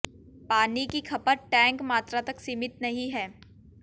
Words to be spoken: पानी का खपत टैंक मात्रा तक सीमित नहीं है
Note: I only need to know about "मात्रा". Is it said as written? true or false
true